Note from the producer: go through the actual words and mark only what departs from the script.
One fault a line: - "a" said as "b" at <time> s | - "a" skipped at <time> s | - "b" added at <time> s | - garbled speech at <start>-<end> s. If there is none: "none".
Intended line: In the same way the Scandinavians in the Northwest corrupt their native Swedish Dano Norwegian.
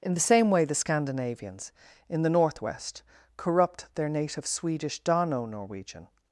none